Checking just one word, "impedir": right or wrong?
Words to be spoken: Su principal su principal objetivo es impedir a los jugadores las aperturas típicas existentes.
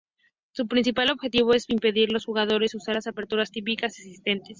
right